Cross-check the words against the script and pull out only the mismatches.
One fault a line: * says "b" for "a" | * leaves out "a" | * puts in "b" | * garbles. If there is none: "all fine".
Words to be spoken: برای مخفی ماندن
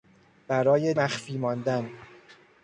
all fine